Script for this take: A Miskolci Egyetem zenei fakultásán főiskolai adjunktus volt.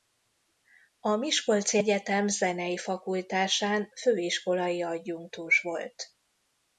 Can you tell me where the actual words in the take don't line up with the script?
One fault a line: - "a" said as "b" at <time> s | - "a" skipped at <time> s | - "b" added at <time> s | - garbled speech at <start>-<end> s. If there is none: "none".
none